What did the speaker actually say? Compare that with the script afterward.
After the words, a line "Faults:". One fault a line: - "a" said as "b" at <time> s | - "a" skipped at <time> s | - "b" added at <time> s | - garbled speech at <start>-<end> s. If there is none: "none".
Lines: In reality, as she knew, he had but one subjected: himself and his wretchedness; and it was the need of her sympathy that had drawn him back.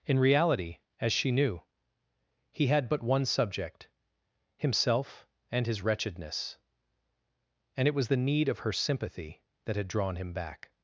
In reality, as she knew, he had but one subject: himself and his wretchedness; and it was the need of her sympathy that had drawn him back.
Faults:
- "subjected" said as "subject" at 3.2 s